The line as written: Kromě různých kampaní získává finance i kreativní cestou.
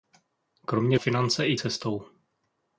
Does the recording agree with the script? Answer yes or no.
no